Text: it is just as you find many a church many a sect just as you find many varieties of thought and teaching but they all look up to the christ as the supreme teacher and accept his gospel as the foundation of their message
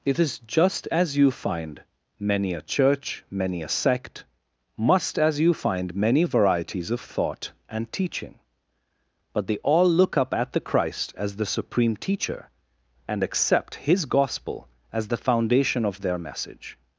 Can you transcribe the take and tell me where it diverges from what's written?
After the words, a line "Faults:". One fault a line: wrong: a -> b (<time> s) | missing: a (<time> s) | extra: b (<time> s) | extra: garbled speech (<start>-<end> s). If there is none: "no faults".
it is just as you find many a church many a sect must as you find many varieties of thought and teaching but they all look up at the christ as the supreme teacher and accept his gospel as the foundation of their message
Faults:
wrong: just -> must (4.8 s)
wrong: to -> at (10.3 s)